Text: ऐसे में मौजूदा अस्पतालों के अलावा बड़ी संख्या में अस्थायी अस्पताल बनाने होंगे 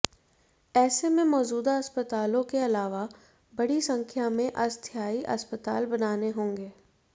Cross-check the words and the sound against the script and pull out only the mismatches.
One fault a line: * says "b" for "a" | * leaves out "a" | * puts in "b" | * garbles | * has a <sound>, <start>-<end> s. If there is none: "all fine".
all fine